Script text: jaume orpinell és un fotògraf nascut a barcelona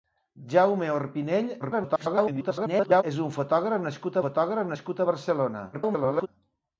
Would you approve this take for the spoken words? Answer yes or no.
no